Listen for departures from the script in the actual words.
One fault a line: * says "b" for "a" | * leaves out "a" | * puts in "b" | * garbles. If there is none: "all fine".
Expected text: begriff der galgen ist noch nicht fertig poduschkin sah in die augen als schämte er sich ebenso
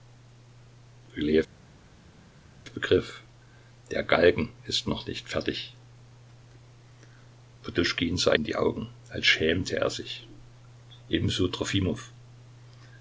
all fine